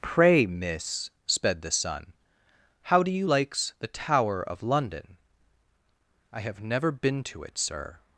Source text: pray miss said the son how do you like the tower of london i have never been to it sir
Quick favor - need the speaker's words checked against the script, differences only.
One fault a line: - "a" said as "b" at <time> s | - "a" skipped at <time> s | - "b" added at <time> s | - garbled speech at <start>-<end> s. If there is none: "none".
- "said" said as "sped" at 1.3 s
- "like" said as "likes" at 3.2 s